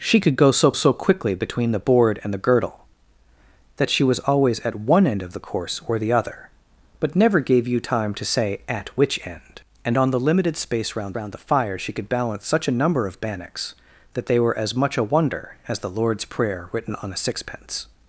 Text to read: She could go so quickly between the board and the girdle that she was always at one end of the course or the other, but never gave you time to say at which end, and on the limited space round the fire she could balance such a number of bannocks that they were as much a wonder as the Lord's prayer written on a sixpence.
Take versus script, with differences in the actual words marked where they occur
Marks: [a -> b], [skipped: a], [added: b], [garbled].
She could go so [added: so] quickly between the board and the girdle that she was always at one end of the course or the other, but never gave you time to say at which end, and on the limited space round [added: round] the fire she could balance such a number of bannocks that they were as much a wonder as the Lord's prayer written on a sixpence.